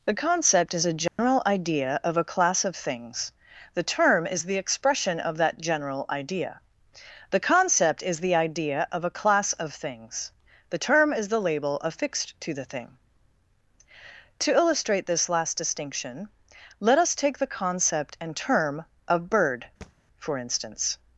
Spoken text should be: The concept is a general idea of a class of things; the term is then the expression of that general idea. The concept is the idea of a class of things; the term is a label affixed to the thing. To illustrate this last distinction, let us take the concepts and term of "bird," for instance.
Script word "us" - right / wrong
right